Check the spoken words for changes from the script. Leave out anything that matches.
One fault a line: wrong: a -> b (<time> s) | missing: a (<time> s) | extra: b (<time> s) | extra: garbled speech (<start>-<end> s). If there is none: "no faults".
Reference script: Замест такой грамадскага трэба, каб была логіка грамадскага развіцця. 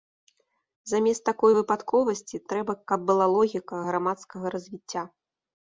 wrong: грамадскага -> выпадковасці (1.6 s)